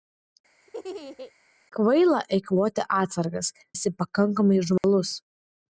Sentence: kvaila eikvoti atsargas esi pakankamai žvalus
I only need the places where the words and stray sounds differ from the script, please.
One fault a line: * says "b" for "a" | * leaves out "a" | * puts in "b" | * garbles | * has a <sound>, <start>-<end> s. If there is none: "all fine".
* has a laugh, 0.6-1.3 s
* has a dropout, 4.8-4.8 s